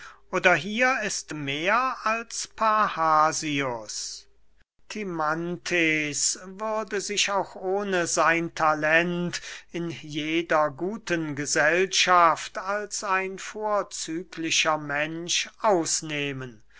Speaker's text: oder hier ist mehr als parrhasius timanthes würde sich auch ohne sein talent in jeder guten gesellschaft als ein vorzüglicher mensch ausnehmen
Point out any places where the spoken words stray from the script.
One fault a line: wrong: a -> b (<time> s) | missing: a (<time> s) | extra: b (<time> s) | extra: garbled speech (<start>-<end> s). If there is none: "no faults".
no faults